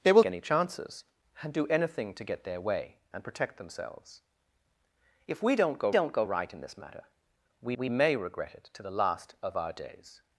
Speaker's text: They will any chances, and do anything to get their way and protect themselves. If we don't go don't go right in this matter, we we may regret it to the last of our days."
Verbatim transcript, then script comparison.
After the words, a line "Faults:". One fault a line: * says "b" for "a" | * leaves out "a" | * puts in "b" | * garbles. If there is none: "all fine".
They will any chances, and do anything to get their way and protect themselves. If we don't go don't go right in this matter, we we may regret it to the last of our days."
Faults:
all fine